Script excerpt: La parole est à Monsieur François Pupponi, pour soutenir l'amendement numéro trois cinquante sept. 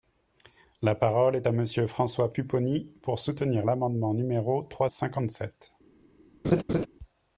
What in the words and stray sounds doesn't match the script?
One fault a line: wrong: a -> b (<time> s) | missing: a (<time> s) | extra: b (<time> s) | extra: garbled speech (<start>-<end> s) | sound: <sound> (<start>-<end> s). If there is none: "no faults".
sound: laugh (6.4-6.9 s)